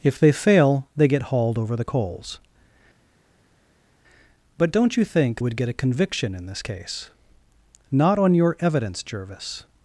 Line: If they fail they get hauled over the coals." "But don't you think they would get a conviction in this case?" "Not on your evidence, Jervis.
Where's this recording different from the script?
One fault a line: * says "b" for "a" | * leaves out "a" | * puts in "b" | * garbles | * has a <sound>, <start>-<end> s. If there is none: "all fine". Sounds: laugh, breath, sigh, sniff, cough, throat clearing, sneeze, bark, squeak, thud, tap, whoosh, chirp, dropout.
* leaves out "they"